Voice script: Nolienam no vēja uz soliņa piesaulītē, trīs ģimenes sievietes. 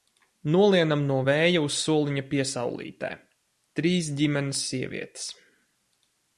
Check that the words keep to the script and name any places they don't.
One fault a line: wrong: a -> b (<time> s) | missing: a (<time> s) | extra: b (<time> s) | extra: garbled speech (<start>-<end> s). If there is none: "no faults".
no faults